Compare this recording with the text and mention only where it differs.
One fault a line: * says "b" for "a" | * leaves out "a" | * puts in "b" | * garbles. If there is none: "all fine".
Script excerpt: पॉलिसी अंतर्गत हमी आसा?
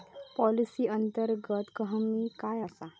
* puts in "काय"